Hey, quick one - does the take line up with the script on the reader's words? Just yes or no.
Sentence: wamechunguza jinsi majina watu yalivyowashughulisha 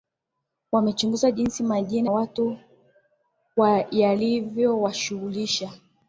yes